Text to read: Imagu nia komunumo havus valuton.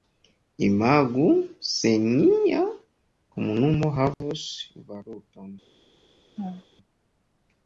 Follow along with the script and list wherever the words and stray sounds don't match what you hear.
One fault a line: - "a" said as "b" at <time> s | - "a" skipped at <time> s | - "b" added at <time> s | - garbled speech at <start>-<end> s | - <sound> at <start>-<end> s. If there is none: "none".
- "se" added at 1.6 s
- dropout at 4.1-4.2 s
- laugh at 6.4-6.6 s